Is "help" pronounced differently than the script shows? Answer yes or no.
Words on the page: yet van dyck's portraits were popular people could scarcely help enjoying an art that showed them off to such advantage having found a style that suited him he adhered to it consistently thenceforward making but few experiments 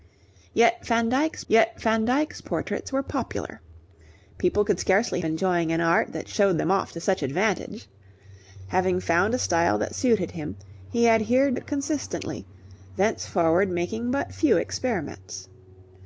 yes